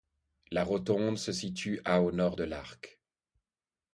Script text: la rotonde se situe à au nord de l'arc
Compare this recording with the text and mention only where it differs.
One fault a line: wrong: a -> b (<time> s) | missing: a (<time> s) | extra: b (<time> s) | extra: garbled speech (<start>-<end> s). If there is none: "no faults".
no faults